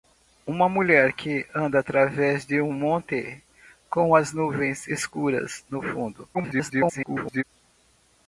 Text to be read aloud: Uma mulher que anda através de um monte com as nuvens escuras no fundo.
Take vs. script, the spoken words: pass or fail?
fail